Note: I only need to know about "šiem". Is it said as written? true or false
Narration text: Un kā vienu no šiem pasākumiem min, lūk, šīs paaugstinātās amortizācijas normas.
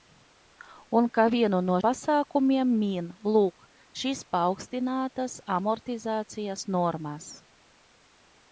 false